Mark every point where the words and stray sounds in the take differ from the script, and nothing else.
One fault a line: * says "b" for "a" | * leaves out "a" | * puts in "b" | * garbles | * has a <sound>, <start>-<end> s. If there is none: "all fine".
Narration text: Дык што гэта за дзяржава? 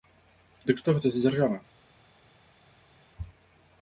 all fine